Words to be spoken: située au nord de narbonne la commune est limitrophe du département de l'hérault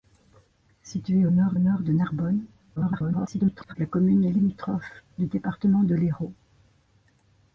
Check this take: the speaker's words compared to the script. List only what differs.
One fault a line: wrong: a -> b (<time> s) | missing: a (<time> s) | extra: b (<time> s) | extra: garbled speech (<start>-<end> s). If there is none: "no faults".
extra: nord (1.6 s)
extra: garbled speech (2.8-3.7 s)